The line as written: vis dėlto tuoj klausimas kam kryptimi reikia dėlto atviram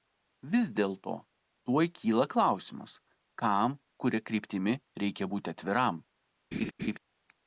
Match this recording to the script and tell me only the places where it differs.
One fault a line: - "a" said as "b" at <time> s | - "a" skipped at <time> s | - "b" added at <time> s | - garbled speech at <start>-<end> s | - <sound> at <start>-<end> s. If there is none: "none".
- "kyla" added at 2.0 s
- "kuria" added at 4.0 s
- "dėlto" said as "būti" at 5.3 s
- laugh at 6.5-7.0 s